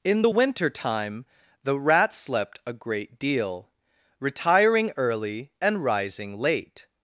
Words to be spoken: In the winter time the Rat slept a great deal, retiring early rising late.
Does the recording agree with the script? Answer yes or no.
no